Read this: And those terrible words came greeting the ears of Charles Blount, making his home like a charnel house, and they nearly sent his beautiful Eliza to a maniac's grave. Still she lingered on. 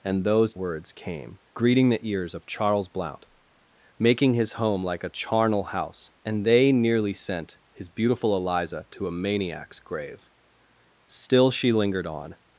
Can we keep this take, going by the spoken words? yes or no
no